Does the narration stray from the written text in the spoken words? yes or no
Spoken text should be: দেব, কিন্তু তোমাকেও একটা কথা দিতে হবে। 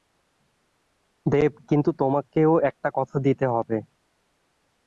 no